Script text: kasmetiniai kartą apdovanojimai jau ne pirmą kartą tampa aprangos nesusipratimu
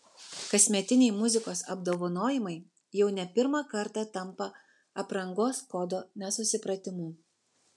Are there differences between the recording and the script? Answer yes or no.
yes